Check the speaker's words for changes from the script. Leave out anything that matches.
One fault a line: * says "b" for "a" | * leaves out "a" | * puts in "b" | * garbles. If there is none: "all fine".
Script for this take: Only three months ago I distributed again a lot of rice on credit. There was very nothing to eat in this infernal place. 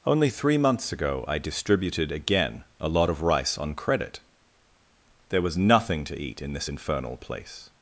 * leaves out "very"